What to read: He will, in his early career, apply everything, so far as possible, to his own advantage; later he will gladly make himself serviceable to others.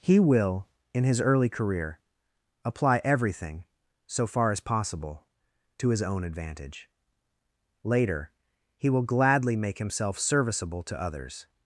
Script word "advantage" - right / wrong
right